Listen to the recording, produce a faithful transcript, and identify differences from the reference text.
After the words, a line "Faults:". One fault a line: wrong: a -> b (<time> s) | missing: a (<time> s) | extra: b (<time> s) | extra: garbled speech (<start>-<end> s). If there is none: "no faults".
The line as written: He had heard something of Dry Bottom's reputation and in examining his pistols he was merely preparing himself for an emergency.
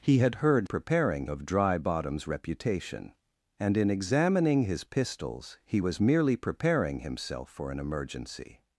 He had heard preparing of Dry Bottom's reputation and in examining his pistols he was merely preparing himself for an emergency.
Faults:
wrong: something -> preparing (0.6 s)